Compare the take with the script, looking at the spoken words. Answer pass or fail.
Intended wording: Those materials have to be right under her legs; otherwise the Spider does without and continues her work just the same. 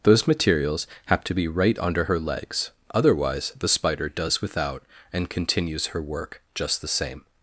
pass